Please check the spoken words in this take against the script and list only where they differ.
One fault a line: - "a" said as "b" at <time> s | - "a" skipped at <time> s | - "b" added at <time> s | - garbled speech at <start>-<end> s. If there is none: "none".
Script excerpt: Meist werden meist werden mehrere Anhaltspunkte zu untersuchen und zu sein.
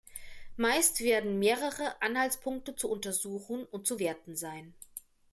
- "meist werden" skipped at 1.4 s
- "werten" added at 4.0 s